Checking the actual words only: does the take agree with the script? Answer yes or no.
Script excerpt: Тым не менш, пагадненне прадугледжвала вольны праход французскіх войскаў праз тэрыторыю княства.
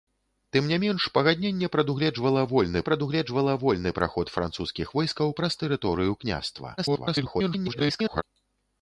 no